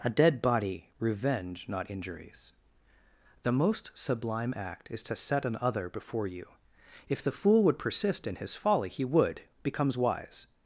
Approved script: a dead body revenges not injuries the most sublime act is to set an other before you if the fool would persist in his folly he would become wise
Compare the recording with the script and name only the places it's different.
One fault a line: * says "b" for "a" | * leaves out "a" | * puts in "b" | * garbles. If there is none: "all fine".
* says "revenge" for "revenges"
* says "becomes" for "become"